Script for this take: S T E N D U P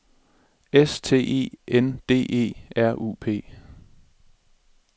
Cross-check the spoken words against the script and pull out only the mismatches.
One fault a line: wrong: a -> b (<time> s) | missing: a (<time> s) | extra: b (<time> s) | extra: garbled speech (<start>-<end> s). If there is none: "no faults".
extra: E R (2.3 s)